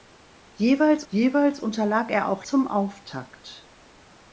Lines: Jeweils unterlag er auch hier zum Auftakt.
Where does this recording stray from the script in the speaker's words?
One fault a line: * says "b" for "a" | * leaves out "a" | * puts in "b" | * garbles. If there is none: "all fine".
* puts in "jeweils"
* leaves out "hier"